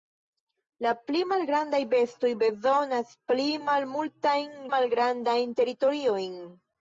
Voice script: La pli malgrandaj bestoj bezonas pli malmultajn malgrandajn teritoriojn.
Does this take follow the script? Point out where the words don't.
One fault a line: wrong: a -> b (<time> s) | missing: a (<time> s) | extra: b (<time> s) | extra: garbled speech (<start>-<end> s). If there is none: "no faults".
no faults